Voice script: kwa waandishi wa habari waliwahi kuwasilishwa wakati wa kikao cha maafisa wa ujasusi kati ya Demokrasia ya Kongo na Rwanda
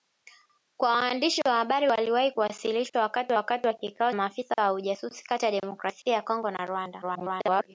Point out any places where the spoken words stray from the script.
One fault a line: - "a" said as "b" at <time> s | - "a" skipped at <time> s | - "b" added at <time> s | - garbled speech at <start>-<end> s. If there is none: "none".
- "wakati" added at 3.3 s
- "cha" skipped at 4.1 s
- garbled speech at 7.0-7.7 s